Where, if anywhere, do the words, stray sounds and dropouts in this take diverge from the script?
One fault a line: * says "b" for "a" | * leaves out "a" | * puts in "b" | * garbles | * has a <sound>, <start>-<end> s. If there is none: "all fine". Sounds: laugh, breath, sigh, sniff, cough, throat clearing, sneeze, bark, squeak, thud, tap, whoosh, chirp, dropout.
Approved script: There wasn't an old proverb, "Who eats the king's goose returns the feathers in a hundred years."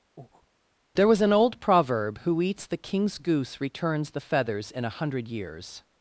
* has a breath, 0.2-0.5 s
* says "was" for "wasn't"